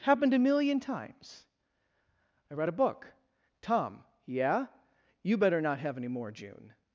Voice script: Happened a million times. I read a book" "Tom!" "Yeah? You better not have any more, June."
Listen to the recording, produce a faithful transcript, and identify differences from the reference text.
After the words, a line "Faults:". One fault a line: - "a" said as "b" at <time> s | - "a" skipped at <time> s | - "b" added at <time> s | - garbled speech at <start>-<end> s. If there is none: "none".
Happened a million times. I read a book" "Tom!" "Yeah? You better not have any more, June."
Faults:
none